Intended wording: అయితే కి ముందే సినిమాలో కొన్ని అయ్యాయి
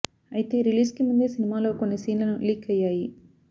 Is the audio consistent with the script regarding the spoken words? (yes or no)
no